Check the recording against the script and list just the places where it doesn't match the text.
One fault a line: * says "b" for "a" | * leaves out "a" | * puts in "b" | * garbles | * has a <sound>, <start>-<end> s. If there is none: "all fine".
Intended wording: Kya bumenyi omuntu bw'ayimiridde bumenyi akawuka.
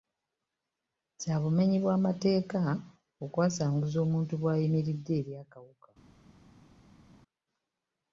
* puts in "bw'amateeka okwasanguza"
* says "eri" for "bumenyi"